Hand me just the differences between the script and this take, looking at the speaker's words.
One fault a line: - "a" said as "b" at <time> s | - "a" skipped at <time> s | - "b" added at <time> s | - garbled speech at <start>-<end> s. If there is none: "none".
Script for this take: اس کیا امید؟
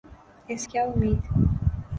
none